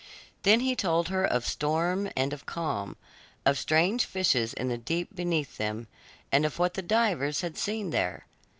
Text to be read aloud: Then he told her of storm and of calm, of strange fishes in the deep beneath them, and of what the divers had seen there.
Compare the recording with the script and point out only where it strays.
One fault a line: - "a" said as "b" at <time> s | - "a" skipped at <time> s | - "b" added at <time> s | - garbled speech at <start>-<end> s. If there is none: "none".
none